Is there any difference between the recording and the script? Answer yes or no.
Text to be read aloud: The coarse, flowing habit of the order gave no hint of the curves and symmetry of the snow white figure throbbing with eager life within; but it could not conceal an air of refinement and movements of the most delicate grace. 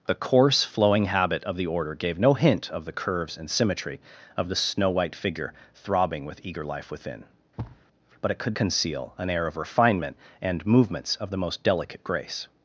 yes